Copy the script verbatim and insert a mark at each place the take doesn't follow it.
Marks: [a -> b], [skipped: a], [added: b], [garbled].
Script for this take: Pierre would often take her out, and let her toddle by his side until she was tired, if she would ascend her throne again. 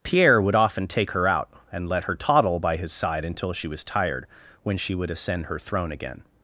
Pierre would often take her out, and let her toddle by his side until she was tired, [if -> when] she would ascend her throne again.